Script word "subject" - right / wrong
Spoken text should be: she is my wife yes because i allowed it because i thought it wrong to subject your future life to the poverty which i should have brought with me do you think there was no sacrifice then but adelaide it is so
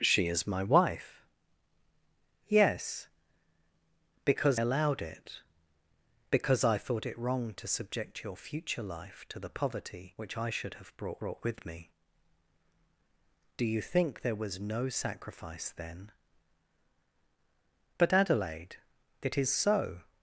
right